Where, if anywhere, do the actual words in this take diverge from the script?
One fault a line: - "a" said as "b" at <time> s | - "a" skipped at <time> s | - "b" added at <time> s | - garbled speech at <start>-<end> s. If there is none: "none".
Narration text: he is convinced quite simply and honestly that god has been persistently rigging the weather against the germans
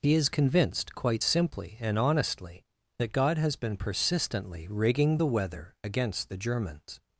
none